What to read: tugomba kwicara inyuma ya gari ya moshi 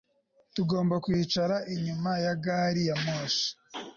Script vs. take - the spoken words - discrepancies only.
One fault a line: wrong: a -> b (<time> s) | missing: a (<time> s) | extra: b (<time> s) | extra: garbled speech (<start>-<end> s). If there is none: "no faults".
no faults